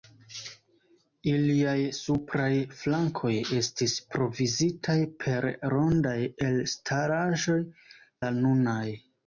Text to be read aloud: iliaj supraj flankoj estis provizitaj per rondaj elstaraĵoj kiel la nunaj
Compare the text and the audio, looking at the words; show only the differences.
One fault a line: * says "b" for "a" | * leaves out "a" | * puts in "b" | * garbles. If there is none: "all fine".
* leaves out "kiel"